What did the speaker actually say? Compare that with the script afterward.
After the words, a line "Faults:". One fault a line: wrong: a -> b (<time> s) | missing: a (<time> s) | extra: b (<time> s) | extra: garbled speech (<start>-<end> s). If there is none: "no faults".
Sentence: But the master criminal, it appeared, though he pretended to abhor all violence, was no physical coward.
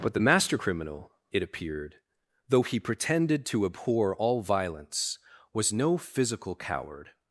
But the master criminal, it appeared, though he pretended to abhor all violence, was no physical coward.
Faults:
no faults